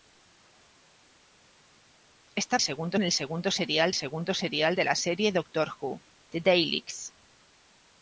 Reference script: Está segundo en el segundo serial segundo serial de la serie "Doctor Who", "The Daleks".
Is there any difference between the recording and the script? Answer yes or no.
no